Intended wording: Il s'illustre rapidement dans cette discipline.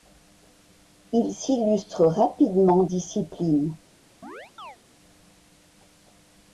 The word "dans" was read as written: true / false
false